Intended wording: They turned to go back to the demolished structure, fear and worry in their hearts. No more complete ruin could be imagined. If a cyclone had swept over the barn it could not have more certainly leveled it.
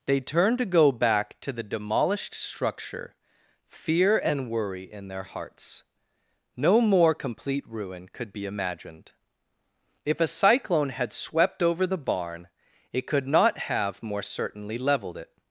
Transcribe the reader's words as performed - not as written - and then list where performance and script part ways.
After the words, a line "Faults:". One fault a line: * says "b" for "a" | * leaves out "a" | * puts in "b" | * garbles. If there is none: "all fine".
They turned to go back to the demolished structure, fear and worry in their hearts. No more complete ruin could be imagined. If a cyclone had swept over the barn it could not have more certainly leveled it.
Faults:
all fine